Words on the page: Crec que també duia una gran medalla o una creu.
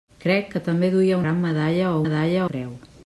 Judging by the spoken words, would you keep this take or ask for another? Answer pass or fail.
fail